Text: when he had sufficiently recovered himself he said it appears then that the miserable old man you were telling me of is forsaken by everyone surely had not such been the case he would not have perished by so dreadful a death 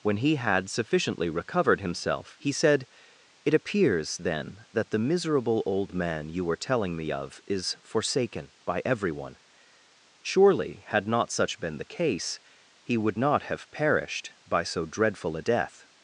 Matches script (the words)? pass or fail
pass